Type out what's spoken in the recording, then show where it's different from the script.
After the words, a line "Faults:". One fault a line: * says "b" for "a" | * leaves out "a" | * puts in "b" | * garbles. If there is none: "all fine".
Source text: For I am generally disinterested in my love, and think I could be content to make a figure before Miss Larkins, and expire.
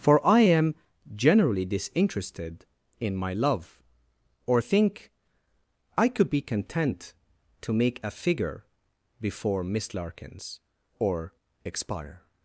For I am generally disinterested in my love, or think I could be content to make a figure before Miss Larkins, or expire.
Faults:
* says "or" for "and"
* says "or" for "and"